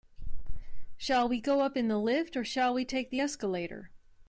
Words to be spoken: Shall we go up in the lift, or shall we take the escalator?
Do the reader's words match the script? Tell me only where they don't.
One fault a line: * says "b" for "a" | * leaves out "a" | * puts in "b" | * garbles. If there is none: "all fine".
all fine